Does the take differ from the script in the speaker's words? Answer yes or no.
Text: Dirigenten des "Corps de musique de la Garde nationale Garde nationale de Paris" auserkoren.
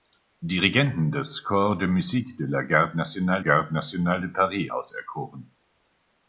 no